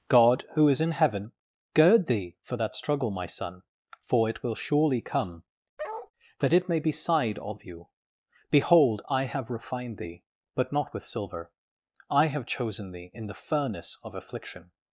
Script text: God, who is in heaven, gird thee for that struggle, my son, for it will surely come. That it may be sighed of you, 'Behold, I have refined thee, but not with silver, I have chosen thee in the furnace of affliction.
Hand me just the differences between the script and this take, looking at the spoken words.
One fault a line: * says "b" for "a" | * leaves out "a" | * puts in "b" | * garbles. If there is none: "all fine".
all fine